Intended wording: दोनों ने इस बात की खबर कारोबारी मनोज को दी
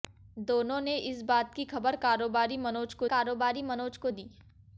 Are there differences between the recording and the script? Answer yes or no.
yes